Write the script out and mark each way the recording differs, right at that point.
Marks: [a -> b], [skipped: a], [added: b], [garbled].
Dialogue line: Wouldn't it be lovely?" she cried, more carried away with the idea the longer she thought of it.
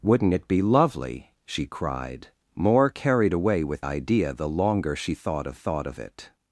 Wouldn't it be lovely?" she cried, more carried away with [skipped: the] idea the longer she thought of [added: thought of] it.